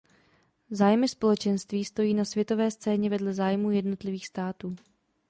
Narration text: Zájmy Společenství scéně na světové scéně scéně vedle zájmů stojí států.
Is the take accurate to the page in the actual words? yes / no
no